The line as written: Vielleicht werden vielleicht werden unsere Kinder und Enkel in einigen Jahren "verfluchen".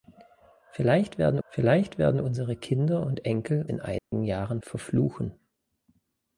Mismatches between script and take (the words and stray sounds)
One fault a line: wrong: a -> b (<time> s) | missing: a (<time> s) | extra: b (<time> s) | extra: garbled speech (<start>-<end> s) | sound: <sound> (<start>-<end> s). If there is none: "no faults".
sound: dropout (4.0-4.1 s)